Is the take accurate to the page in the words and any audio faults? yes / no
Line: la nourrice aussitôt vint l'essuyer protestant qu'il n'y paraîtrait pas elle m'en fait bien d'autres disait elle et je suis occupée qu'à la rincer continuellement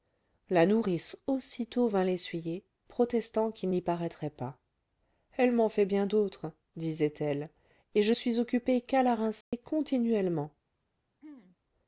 no